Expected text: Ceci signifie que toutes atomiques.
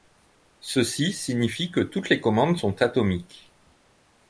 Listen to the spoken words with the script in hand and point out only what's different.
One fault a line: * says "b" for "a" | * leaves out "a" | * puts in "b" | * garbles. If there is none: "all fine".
* puts in "les commandes sont"